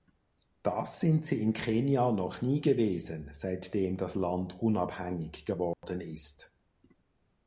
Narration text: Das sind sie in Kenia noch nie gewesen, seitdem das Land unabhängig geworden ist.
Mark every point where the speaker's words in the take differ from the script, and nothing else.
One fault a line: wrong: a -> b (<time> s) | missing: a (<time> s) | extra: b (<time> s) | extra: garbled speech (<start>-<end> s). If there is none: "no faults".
no faults